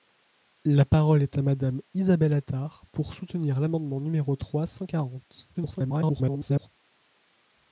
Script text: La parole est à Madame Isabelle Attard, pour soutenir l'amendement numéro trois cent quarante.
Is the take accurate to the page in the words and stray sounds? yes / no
no